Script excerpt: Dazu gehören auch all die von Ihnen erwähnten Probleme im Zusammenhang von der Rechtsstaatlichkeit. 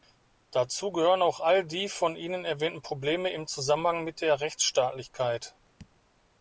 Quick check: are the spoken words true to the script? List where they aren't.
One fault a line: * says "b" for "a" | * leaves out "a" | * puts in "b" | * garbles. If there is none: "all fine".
* says "mit" for "von"